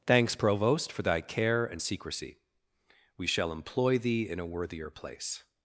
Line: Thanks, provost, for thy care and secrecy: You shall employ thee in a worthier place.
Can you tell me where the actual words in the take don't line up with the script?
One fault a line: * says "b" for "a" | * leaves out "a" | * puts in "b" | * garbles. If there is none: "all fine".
* says "We" for "You"